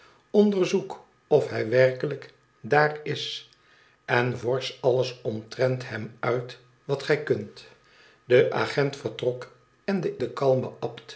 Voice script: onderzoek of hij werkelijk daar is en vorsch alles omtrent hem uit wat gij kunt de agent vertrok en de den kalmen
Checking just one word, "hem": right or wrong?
right